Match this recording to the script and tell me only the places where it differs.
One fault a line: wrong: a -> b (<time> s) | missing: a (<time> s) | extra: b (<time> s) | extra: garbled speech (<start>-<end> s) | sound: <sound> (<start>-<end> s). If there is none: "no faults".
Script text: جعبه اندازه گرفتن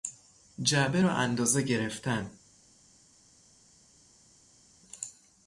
extra: را (1.0 s)